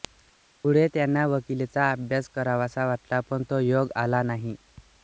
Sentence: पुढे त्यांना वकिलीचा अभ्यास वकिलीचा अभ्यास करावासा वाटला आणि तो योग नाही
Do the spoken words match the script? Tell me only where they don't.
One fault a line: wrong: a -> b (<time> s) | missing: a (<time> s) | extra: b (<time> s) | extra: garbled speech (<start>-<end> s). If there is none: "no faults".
missing: वकिलीचा अभ्यास (2.3 s)
wrong: आणि -> पण (3.3 s)
extra: आला (4.0 s)